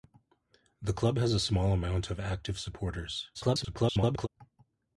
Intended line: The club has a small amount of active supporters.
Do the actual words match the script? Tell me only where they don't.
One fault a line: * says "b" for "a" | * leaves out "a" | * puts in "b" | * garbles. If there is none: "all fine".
* garbles